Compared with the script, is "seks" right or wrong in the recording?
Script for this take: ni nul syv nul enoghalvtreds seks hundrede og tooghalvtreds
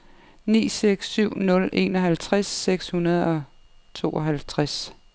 right